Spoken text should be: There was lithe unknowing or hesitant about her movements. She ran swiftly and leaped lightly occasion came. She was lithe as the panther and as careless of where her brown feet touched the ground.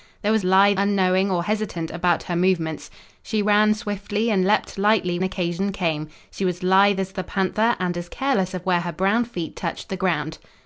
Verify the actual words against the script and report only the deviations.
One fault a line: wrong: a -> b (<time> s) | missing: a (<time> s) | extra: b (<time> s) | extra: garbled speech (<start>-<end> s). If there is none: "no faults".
no faults